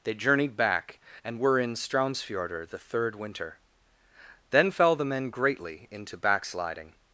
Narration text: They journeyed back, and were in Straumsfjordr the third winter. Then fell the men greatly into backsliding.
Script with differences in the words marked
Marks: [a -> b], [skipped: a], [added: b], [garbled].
They journeyed back, and were in Straumsfjordr the third winter. Then fell the men greatly into backsliding.